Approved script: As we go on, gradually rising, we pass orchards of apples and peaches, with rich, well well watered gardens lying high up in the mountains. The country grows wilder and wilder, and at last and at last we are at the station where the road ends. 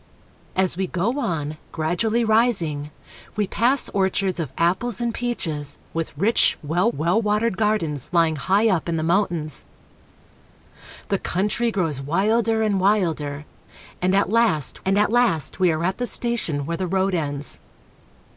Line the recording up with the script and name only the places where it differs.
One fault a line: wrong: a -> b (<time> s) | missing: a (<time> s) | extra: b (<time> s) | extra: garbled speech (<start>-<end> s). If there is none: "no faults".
no faults